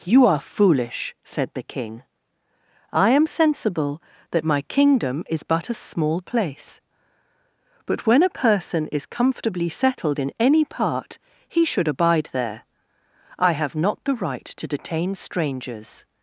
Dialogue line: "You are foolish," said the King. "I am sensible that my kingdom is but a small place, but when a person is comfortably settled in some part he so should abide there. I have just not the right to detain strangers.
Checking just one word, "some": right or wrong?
wrong